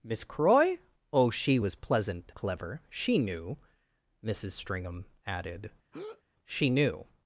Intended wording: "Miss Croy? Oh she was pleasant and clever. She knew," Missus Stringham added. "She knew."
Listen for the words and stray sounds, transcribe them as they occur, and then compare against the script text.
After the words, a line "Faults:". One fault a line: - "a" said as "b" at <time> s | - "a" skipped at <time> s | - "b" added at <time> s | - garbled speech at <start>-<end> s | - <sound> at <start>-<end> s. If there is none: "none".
"Miss Croy? Oh she was pleasant clever. She knew," Missus Stringham added. "She knew."
Faults:
- "and" skipped at 2.3 s
- breath at 5.9-6.2 s